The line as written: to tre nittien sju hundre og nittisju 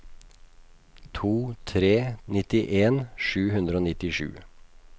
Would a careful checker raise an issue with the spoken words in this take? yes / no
no